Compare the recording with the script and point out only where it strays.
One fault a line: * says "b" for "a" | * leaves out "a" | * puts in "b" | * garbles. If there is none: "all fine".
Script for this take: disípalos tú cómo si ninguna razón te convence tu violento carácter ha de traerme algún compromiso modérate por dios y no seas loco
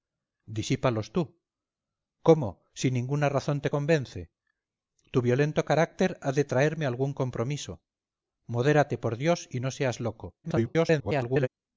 * garbles